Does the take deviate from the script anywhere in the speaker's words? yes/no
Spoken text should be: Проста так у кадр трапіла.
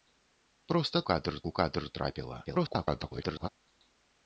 yes